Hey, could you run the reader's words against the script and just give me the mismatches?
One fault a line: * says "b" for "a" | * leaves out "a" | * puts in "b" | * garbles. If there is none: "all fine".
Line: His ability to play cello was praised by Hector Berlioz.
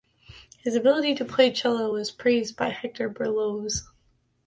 all fine